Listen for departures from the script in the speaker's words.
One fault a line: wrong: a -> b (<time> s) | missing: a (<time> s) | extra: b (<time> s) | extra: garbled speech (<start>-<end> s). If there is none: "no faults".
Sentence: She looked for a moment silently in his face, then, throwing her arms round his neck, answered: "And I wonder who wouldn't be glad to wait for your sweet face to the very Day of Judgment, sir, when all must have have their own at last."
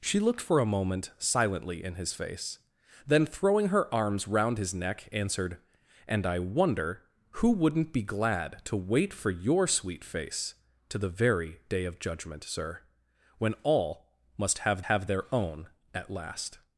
no faults